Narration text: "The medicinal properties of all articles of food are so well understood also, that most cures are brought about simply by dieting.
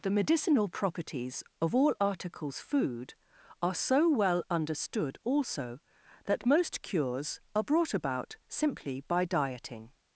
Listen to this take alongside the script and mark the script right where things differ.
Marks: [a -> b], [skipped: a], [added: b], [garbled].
"The medicinal properties of all articles [skipped: of] food are so well understood also, that most cures are brought about simply by dieting.